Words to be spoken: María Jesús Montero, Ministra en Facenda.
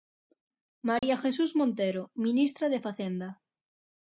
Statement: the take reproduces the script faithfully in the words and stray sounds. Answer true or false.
false